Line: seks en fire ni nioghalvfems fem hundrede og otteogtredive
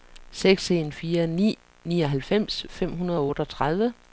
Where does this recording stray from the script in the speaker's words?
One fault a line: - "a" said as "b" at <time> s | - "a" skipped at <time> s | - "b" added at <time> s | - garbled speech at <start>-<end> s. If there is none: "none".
none